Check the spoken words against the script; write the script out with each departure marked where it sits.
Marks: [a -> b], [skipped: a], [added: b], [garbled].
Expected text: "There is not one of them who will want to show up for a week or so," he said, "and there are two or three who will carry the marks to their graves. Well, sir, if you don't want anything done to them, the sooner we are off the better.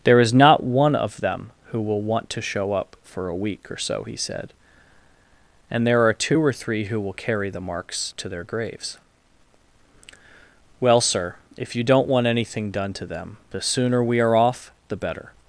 "There is not one of them who will want to show up for a week or so," he said, "and there are two or three who will carry the marks to their graves. Well, sir, if you don't want anything done to them, the sooner we are off the better.